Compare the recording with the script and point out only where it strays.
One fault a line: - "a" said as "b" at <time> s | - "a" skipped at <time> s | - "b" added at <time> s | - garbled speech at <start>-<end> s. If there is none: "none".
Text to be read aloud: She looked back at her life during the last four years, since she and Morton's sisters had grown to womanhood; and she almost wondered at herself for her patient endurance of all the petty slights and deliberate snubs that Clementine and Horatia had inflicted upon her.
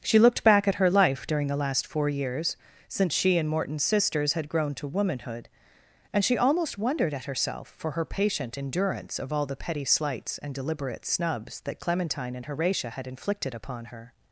none